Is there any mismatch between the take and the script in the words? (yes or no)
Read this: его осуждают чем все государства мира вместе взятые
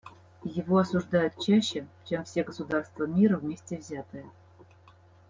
yes